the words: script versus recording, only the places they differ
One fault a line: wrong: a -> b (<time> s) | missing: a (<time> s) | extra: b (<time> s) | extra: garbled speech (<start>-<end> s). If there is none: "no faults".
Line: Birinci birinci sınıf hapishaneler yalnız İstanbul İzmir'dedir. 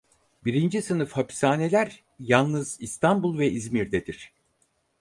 missing: birinci (0.8 s)
extra: ve (3.4 s)